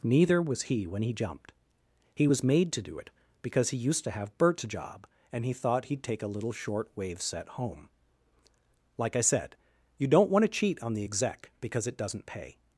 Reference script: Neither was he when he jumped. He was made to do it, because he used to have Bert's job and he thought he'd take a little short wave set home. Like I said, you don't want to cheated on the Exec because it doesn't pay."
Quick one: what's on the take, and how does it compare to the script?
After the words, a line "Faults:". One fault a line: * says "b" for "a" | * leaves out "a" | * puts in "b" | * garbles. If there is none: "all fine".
Neither was he when he jumped. He was made to do it, because he used to have Bert's job and he thought he'd take a little short wave set home. Like I said, you don't want to cheat on the Exec because it doesn't pay."
Faults:
* says "cheat" for "cheated"